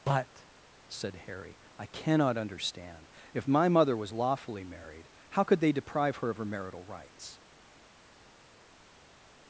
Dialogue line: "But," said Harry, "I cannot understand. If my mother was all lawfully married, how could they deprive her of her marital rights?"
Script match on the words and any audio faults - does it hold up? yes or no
no